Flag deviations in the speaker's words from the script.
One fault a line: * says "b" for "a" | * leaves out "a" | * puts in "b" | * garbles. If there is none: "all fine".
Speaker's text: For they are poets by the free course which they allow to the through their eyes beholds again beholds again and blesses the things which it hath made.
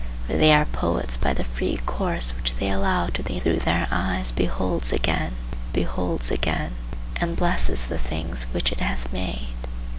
all fine